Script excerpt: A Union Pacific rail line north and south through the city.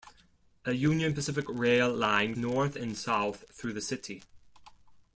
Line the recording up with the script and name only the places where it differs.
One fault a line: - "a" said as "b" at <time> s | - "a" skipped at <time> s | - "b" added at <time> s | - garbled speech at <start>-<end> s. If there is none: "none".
none